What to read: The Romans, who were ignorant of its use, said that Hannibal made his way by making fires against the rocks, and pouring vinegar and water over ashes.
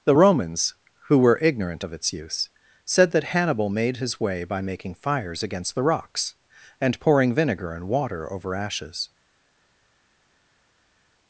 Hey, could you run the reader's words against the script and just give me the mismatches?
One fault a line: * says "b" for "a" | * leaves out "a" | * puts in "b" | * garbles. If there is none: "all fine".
all fine